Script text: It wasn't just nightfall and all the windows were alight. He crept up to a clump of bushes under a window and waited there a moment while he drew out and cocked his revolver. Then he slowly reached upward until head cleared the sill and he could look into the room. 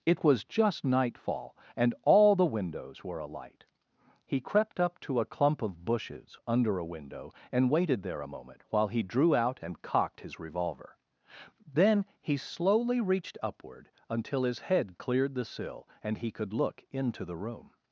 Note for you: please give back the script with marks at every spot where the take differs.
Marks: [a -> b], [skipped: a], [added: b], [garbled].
It [wasn't -> was] just nightfall and all the windows were alight. He crept up to a clump of bushes under a window and waited there a moment while he drew out and cocked his revolver. Then he slowly reached upward until [added: his] head cleared the sill and he could look into the room.